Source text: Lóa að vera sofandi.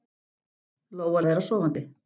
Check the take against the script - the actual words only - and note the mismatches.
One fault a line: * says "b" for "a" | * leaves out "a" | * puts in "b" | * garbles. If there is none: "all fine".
all fine